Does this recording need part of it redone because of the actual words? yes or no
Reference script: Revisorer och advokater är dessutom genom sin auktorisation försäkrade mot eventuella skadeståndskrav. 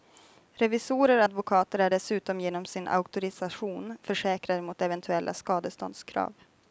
no